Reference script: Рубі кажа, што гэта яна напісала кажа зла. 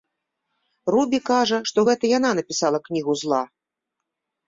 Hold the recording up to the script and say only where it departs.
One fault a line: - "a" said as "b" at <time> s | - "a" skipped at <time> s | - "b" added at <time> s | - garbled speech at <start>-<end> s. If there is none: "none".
- "кажа" said as "кнігу" at 2.9 s